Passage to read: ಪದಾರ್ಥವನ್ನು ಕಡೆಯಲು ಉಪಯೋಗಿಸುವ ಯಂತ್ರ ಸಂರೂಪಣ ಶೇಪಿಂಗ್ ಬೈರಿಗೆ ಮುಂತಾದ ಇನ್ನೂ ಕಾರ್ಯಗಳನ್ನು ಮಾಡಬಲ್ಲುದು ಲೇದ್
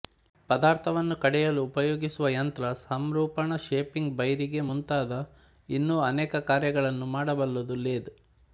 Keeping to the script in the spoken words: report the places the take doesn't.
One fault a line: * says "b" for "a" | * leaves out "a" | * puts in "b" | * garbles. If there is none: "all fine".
* puts in "ಅನೇಕ"